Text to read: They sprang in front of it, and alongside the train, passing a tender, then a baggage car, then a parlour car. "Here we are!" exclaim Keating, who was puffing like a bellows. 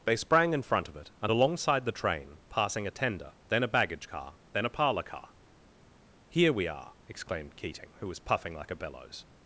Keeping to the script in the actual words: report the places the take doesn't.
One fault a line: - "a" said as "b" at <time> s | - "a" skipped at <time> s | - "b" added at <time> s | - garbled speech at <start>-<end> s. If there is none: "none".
- "exclaim" said as "exclaimed" at 7.1 s